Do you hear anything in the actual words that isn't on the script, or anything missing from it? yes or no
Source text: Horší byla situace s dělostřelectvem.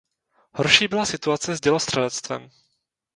no